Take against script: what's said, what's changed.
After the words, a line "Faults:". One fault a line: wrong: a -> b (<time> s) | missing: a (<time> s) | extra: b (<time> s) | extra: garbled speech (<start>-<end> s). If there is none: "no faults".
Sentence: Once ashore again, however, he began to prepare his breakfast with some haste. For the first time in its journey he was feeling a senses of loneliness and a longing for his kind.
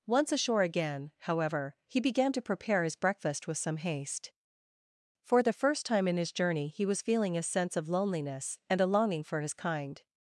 Once ashore again, however, he began to prepare his breakfast with some haste. For the first time in his journey he was feeling a sense of loneliness and a longing for his kind.
Faults:
wrong: its -> his (6.2 s)
wrong: senses -> sense (7.4 s)